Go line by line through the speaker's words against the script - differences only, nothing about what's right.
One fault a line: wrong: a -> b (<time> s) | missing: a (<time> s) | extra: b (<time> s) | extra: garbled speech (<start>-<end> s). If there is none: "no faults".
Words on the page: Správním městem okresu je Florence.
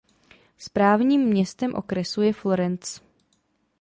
no faults